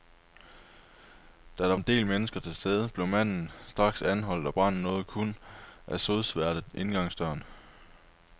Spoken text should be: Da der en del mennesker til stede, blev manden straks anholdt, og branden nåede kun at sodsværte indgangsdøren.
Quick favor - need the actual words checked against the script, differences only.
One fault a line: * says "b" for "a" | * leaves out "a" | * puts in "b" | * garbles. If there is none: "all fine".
all fine